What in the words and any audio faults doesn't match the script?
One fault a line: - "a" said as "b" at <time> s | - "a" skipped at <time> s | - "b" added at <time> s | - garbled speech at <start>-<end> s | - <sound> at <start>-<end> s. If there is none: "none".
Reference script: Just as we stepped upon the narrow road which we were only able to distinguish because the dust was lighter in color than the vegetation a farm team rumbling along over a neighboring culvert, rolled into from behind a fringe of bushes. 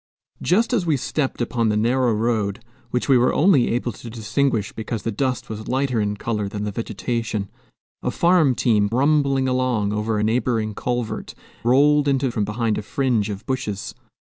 none